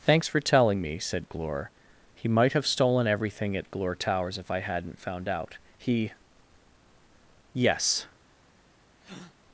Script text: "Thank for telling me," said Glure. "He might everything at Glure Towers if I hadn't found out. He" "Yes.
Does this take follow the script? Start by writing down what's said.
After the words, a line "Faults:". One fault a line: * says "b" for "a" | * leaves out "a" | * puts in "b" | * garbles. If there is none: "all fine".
"Thanks for telling me," said Glure. "He might have stolen everything at Glure Towers if I hadn't found out. He" "Yes.
Faults:
* says "Thanks" for "Thank"
* puts in "have stolen"